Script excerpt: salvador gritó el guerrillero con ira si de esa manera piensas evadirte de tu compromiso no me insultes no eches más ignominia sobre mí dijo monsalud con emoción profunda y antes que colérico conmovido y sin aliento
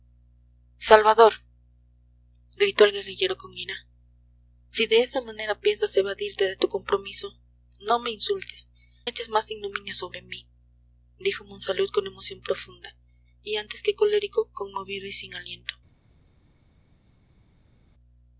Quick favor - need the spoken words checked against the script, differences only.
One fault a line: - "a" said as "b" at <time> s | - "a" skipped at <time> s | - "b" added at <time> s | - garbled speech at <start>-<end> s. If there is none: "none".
- "no" skipped at 8.7 s